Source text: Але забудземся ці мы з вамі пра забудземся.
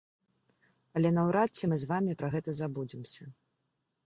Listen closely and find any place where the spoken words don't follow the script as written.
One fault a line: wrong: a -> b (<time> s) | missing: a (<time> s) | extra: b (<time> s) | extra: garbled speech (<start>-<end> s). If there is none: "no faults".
wrong: забудземся -> наўрад (1.2 s)
extra: гэта (2.3 s)